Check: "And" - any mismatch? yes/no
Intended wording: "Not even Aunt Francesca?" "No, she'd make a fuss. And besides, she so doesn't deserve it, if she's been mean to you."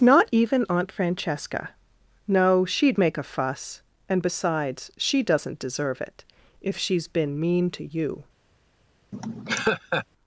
no